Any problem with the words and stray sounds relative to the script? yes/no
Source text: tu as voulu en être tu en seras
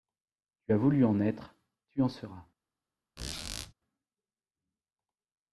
yes